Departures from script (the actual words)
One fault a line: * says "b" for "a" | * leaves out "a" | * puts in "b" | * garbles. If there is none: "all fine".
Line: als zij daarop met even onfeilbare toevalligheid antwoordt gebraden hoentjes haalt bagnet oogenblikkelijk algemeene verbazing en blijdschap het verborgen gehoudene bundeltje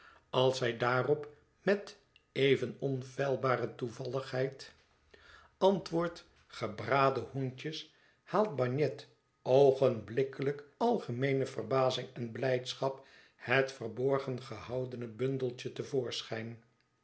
all fine